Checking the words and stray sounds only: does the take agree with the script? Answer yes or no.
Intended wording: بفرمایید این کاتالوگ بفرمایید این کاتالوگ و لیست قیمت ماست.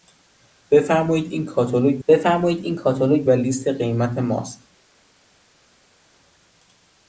yes